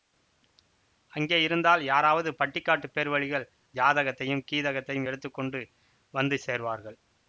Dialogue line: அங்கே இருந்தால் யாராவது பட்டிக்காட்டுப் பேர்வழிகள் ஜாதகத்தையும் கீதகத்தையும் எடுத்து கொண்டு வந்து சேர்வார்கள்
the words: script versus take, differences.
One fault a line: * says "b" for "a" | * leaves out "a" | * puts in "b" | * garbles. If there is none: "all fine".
all fine